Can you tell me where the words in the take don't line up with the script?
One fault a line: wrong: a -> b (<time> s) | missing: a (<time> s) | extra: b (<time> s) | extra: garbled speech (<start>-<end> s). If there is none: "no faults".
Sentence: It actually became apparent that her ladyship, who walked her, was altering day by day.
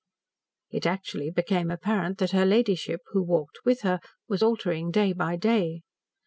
extra: with (3.7 s)